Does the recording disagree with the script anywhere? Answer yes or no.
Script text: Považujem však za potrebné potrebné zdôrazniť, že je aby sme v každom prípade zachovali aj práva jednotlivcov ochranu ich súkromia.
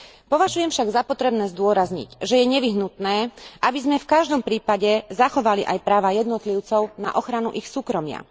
yes